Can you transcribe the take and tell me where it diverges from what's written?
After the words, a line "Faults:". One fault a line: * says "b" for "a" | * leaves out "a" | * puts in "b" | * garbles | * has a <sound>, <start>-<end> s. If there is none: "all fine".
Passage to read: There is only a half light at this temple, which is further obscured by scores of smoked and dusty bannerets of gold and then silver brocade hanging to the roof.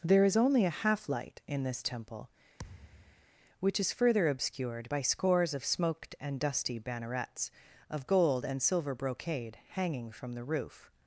There is only a half light in this temple, which is further obscured by scores of smoked and dusty bannerets of gold and silver brocade hanging from the roof.
Faults:
* says "in" for "at"
* has a thud, 2.6-3.3 s
* leaves out "then"
* says "from" for "to"